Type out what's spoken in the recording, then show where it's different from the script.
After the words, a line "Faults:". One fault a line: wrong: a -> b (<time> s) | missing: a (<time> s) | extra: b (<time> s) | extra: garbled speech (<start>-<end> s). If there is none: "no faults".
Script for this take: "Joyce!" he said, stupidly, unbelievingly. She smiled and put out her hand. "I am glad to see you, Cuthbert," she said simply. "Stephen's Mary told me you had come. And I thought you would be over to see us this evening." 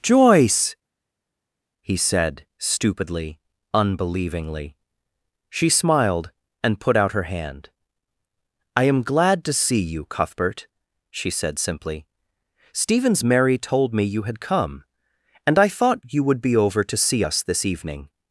"Joyce!" he said, stupidly, unbelievingly. She smiled and put out her hand. "I am glad to see you, Cuthbert," she said simply. "Stephen's Mary told me you had come. And I thought you would be over to see us this evening."
Faults:
no faults